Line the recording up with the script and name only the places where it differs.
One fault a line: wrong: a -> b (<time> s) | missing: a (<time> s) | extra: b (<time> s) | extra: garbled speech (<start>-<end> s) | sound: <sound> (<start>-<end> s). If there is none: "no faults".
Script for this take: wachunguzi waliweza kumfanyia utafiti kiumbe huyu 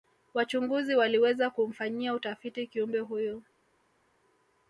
no faults